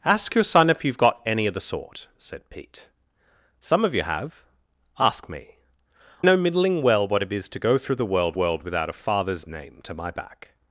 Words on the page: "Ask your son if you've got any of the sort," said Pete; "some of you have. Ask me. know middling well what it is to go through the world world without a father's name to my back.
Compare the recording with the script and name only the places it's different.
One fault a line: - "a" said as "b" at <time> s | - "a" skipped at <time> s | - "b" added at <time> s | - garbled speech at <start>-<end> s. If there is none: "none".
none